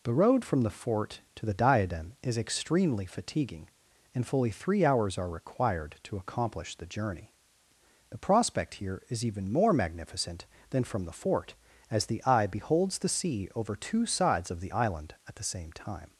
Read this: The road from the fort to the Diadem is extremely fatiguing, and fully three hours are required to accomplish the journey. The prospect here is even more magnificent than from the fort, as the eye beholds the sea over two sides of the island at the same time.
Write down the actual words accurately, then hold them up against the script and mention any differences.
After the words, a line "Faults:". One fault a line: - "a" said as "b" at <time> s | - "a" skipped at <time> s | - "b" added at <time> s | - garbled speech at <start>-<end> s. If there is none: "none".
The road from the fort to the Diadem is extremely fatiguing, and fully three hours are required to accomplish the journey. The prospect here is even more magnificent than from the fort, as the eye beholds the sea over two sides of the island at the same time.
Faults:
none